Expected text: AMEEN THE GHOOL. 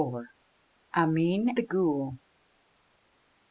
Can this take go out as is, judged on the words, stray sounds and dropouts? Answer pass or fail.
pass